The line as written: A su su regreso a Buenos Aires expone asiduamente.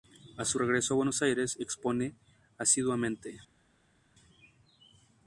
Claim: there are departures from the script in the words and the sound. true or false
true